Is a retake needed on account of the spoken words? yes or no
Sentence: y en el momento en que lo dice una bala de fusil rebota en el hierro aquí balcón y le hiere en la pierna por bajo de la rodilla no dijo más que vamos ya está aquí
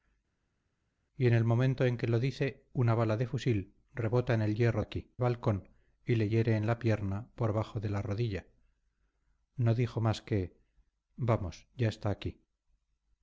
no